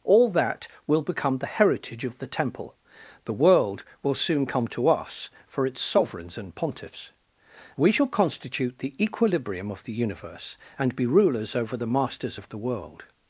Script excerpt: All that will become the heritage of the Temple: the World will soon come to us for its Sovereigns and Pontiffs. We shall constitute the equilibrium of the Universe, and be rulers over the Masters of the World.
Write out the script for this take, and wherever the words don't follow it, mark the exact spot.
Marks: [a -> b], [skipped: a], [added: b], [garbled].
All that will become the heritage of the Temple: the World will soon come to us for its Sovereigns and Pontiffs. We shall constitute the equilibrium of the Universe, and be rulers over the Masters of the World.